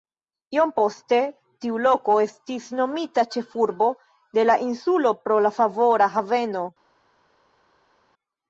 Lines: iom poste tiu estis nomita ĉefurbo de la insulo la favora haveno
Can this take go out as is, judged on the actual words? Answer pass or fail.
fail